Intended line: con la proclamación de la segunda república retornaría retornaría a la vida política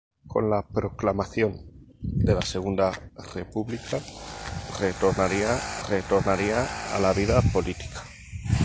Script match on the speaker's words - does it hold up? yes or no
yes